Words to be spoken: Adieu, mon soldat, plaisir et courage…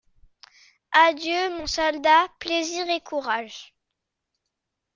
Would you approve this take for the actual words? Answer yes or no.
yes